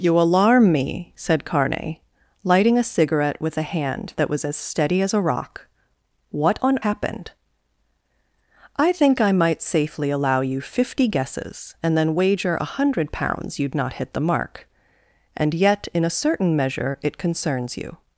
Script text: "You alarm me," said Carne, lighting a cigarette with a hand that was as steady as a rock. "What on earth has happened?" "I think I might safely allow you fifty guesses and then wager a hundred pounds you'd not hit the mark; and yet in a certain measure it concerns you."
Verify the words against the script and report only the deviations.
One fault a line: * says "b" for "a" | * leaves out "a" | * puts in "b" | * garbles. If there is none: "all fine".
* leaves out "earth has"